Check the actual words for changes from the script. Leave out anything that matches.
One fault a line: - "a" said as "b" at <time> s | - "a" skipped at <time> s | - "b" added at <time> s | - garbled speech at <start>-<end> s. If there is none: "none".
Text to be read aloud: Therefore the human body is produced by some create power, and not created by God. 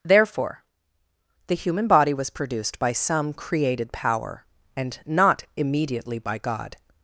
- "is" said as "was" at 2.1 s
- "create" said as "created" at 3.3 s
- "created" said as "immediately" at 5.6 s